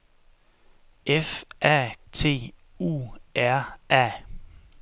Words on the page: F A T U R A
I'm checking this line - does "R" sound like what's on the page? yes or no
yes